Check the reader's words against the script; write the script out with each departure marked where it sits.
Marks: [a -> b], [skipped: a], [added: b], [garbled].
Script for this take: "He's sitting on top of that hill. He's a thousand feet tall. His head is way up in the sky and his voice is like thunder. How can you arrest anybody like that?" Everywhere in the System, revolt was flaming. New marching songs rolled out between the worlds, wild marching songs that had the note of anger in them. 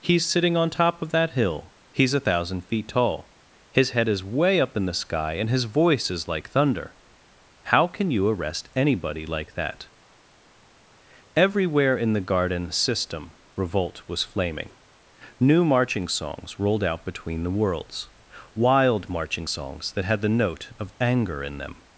"He's sitting on top of that hill. He's a thousand feet tall. His head is way up in the sky and his voice is like thunder. How can you arrest anybody like that?" Everywhere in the [added: garden] System, revolt was flaming. New marching songs rolled out between the worlds, wild marching songs that had the note of anger in them.